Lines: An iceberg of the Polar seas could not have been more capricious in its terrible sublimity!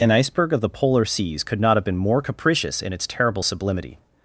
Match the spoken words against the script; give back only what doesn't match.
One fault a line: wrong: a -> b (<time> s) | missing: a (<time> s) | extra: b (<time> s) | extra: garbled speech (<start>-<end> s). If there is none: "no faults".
no faults